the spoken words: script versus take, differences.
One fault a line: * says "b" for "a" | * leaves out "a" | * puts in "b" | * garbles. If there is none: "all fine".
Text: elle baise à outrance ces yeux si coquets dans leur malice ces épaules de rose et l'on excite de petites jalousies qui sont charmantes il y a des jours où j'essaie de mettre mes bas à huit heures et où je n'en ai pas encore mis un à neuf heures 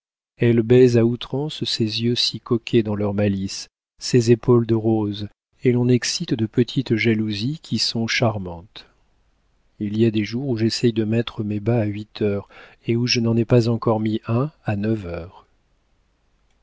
all fine